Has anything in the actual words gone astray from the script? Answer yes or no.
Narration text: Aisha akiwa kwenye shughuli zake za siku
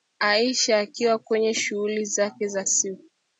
no